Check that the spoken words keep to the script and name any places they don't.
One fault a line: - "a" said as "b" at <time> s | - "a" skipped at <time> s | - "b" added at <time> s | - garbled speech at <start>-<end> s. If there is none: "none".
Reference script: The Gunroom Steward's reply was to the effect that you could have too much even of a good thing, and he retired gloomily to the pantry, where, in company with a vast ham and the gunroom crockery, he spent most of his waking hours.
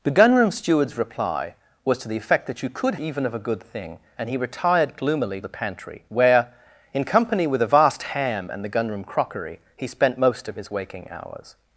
- "have too much" skipped at 3.0 s
- "to" skipped at 5.4 s